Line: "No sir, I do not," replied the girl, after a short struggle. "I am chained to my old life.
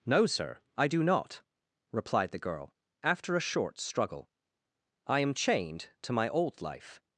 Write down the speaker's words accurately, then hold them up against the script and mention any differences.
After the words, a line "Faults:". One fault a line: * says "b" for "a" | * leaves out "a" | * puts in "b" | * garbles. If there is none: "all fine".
"No sir, I do not," replied the girl, after a short struggle. "I am chained to my old life.
Faults:
all fine